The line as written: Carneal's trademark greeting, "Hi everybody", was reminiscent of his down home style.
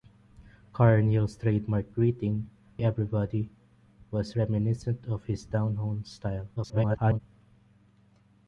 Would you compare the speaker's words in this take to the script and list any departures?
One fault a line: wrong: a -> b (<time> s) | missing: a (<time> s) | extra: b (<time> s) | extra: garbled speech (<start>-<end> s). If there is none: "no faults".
missing: Hi (2.5 s)
extra: garbled speech (6.6-7.2 s)